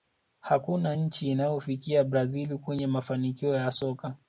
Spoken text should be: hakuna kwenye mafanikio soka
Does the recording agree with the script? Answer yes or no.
no